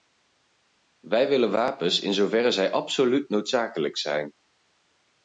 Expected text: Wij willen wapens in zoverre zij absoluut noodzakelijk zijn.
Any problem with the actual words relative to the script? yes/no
no